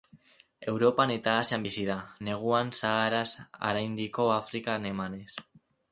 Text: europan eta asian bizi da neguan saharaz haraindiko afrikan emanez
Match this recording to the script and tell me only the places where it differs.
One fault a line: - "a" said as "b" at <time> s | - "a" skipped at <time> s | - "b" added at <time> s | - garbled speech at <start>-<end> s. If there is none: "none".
none